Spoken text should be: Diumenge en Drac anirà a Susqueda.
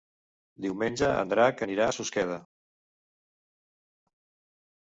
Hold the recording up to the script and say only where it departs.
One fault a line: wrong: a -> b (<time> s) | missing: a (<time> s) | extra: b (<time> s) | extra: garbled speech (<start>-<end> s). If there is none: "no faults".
no faults